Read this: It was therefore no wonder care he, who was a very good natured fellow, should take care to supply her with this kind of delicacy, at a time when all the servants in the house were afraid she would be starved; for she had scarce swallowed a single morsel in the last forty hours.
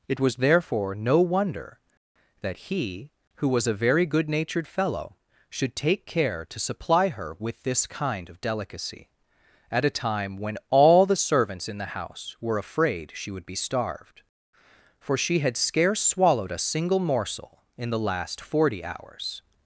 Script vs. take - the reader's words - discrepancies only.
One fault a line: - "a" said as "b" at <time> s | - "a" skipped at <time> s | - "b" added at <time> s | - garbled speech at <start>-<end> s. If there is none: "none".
- "care" said as "that" at 2.4 s